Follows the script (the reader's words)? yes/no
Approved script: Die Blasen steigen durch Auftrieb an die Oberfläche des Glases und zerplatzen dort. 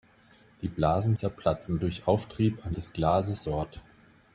no